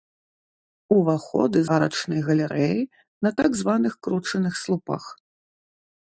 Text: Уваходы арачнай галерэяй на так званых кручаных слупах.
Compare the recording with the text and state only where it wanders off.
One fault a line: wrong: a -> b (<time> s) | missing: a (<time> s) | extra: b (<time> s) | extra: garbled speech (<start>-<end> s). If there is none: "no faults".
no faults